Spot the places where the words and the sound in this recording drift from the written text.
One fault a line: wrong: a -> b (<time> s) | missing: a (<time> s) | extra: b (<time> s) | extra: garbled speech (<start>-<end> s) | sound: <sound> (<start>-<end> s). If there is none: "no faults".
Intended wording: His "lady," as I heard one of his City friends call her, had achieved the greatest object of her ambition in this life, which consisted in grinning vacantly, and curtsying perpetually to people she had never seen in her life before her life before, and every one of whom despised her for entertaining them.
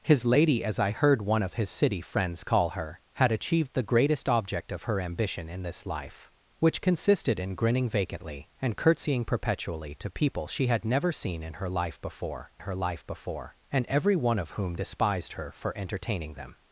no faults